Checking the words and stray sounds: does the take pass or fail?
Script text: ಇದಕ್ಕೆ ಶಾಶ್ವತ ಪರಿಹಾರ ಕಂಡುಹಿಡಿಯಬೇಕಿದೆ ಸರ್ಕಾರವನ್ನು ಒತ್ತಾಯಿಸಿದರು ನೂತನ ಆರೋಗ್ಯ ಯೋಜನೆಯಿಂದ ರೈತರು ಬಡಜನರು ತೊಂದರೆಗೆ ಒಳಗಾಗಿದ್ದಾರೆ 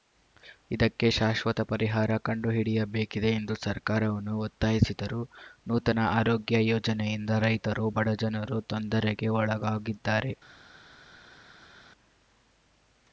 fail